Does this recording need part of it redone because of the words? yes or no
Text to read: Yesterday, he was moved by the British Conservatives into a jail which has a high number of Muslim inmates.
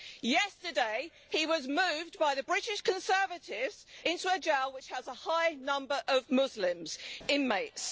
no